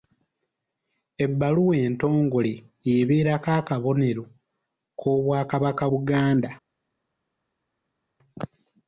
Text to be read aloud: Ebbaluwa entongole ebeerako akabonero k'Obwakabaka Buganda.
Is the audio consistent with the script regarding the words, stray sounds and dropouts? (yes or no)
yes